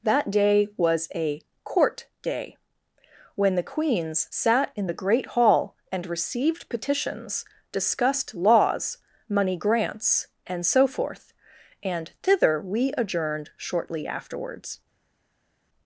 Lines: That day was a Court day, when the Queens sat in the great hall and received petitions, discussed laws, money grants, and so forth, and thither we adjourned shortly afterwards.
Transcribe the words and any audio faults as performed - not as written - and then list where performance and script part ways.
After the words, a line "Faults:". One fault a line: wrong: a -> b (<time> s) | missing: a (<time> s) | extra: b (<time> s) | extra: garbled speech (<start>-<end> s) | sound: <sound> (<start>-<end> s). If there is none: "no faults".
That day was a Court day, when the Queens sat in the great hall and received petitions, discussed laws, money grants, and so forth, and thither we adjourned shortly afterwards.
Faults:
no faults